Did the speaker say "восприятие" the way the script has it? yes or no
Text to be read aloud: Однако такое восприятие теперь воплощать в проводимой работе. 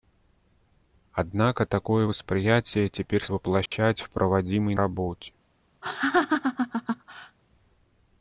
yes